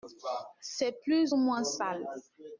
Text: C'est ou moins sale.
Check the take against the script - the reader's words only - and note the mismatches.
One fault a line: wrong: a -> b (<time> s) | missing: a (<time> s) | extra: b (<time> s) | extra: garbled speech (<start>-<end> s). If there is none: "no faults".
extra: plus (1.0 s)